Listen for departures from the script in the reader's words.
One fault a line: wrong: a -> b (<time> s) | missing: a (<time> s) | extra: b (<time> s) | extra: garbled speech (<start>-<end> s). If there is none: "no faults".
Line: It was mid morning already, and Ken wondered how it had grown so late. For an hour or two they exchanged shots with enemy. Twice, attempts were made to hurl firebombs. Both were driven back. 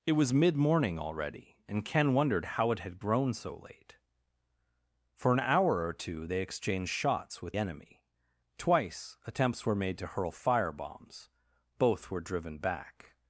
no faults